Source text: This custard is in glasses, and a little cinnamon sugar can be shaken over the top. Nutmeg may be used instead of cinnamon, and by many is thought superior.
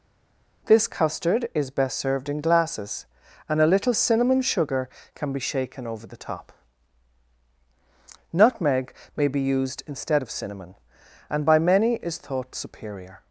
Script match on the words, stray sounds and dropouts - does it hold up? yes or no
no